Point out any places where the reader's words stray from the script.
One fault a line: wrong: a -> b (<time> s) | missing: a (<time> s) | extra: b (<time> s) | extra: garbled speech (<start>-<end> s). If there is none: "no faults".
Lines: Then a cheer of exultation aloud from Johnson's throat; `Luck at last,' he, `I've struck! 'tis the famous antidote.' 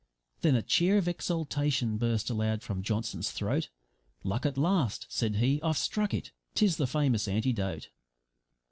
extra: burst (2.0 s)
extra: said (5.1 s)
extra: it (6.1 s)